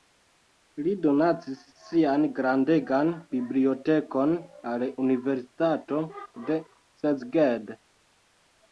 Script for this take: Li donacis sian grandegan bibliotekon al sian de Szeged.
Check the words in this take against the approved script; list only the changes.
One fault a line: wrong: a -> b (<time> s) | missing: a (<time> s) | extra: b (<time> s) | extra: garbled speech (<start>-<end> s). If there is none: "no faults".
wrong: sian -> universitato (5.1 s)